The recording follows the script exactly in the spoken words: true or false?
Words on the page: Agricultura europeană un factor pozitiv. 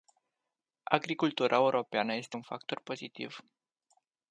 false